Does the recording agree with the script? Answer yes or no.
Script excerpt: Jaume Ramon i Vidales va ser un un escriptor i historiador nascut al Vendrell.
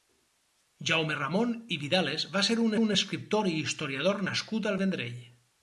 yes